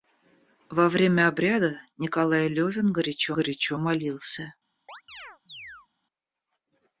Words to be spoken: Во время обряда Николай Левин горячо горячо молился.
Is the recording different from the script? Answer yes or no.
no